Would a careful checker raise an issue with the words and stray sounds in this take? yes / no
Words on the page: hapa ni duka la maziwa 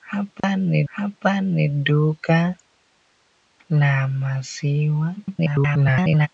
yes